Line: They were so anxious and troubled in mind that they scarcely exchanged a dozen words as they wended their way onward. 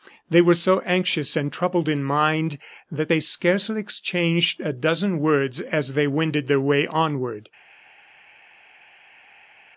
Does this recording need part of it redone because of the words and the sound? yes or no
no